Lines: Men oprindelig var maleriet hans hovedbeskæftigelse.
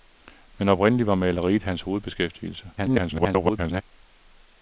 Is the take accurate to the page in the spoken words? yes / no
no